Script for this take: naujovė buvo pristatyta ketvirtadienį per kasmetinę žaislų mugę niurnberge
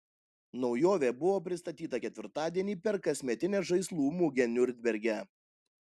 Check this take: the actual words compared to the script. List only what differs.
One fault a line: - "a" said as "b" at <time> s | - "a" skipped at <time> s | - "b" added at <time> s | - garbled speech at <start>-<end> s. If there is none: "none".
none